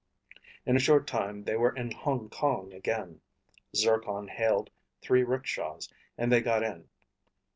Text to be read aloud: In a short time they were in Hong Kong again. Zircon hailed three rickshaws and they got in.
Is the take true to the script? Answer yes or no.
yes